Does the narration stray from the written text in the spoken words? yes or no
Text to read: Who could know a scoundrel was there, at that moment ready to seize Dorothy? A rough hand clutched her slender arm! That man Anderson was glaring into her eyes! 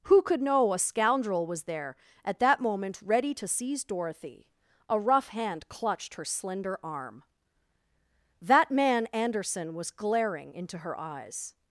no